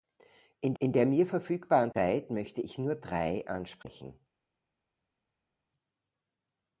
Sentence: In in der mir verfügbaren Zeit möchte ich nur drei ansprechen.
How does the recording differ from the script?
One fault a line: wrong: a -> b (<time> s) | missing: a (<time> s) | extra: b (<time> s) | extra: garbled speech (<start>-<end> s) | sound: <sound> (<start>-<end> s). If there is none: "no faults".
no faults